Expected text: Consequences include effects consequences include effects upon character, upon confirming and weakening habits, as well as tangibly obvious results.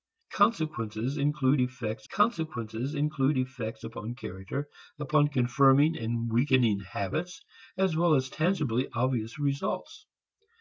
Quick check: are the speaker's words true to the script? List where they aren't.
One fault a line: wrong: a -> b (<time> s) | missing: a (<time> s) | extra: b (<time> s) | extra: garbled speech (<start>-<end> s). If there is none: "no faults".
no faults